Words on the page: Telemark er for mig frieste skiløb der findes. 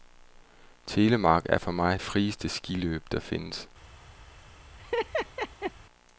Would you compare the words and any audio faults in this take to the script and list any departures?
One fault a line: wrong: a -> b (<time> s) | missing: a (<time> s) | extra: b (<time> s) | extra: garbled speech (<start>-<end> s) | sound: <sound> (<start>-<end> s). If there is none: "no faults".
sound: laugh (4.8-5.7 s)